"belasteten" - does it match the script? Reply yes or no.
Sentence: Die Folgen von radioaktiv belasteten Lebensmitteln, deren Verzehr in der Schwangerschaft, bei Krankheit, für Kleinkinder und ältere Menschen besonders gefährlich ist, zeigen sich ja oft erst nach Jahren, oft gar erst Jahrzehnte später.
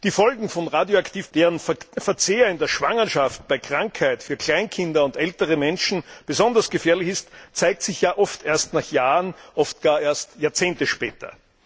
no